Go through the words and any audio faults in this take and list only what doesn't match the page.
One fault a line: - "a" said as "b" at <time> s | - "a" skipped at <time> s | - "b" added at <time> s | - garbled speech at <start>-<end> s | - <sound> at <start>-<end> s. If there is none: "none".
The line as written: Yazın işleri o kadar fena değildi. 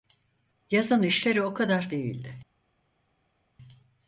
- "fena" skipped at 1.9 s